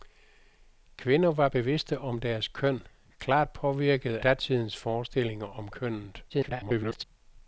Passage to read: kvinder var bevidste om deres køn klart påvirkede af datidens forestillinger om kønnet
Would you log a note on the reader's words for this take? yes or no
yes